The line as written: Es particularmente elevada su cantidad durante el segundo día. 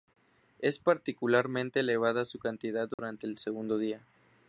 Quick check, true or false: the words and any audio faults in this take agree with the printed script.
false